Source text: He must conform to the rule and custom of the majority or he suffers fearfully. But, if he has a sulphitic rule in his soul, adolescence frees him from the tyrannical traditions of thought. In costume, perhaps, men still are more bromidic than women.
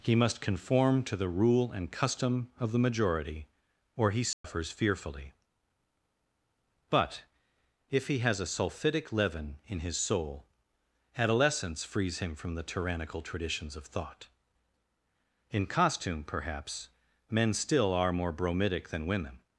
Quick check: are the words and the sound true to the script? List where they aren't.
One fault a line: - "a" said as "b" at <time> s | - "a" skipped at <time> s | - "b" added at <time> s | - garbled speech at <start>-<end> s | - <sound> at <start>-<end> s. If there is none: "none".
- dropout at 4.3-4.4 s
- "rule" said as "leaven" at 9.1 s